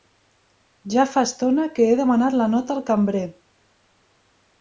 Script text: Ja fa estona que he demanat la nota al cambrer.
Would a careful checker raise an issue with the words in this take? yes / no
no